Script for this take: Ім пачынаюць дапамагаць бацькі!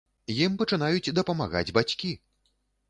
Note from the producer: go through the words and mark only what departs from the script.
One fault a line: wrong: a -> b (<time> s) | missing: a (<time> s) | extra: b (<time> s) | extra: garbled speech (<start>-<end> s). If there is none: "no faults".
no faults